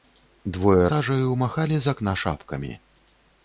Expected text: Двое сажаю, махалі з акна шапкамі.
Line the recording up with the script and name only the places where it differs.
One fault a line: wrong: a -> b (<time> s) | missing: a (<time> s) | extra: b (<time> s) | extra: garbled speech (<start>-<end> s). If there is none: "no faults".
no faults